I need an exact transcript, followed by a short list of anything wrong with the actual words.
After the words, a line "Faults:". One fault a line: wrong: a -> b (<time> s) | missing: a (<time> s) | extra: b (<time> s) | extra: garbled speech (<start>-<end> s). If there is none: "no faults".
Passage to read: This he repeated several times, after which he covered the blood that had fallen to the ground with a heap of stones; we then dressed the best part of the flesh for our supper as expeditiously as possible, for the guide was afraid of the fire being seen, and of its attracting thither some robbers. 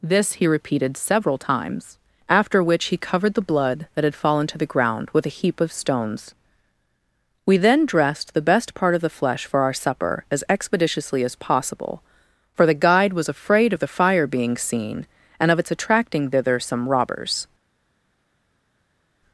This he repeated several times, after which he covered the blood that had fallen to the ground with a heap of stones; we then dressed the best part of the flesh for our supper as expeditiously as possible, for the guide was afraid of the fire being seen, and of its attracting thither some robbers.
Faults:
no faults